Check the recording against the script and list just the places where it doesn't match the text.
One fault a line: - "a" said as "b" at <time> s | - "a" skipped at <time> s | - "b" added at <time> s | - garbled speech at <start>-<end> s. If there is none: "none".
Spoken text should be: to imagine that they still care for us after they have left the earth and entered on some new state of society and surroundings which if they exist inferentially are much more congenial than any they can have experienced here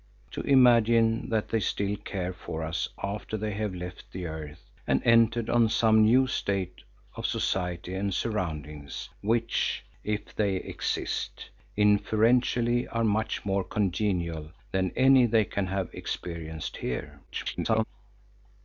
- garbled speech at 17.3-17.8 s